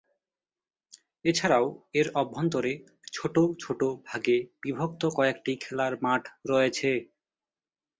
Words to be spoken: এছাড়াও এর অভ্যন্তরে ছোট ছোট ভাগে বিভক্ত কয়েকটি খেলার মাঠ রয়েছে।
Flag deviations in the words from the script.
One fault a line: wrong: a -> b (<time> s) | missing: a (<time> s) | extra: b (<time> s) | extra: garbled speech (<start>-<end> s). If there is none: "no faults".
no faults